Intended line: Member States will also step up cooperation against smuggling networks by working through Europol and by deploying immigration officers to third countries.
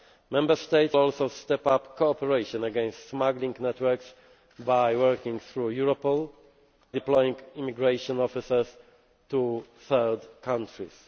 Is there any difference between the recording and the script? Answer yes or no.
yes